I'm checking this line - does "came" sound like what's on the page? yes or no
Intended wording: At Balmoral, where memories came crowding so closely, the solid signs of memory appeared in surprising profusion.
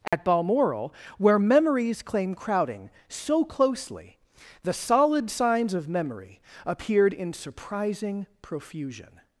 no